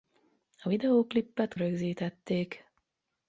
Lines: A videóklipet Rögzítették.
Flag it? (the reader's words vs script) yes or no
no